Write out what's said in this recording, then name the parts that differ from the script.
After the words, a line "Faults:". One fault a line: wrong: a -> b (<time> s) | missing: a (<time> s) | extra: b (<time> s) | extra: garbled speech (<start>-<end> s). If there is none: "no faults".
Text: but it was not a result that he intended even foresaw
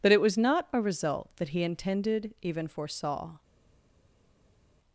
but it was not a result that he intended even foresaw
Faults:
no faults